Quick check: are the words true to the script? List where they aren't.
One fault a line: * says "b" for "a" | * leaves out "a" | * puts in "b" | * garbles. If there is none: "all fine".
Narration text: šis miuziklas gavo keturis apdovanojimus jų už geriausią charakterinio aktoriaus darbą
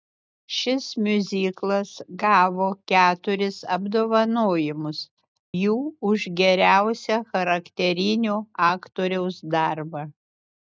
all fine